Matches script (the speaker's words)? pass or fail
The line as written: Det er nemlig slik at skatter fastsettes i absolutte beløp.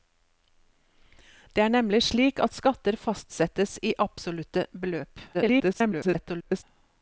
fail